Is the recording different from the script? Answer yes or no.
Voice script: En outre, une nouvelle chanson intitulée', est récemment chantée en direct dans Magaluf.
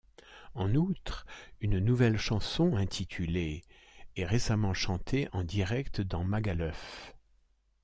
no